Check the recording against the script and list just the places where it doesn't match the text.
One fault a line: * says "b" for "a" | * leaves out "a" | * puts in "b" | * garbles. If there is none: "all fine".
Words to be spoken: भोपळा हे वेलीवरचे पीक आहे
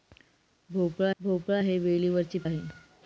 * puts in "भोपळा"
* leaves out "पीक"